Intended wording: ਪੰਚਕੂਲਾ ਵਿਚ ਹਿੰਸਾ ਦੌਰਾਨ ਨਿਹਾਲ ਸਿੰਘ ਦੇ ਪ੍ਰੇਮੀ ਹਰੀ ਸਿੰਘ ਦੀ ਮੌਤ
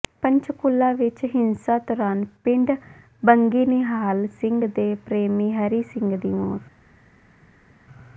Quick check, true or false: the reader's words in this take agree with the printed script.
false